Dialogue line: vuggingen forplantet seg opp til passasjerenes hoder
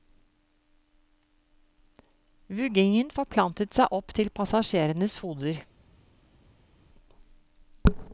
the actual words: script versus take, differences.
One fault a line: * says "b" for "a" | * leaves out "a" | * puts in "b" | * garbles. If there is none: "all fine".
all fine